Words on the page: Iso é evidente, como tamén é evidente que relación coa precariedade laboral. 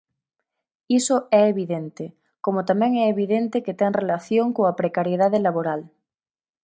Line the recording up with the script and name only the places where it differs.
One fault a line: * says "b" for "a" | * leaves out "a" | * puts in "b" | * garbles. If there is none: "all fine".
* puts in "ten"